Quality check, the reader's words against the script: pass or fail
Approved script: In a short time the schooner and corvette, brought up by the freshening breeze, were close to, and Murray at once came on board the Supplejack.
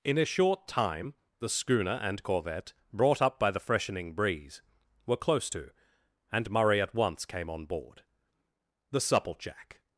pass